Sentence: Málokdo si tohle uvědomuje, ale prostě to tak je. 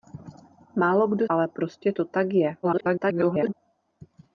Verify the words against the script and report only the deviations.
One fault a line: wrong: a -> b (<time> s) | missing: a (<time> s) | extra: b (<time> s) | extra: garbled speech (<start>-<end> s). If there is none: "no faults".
missing: si tohle uvědomuje (1.3 s)
extra: garbled speech (2.6-3.5 s)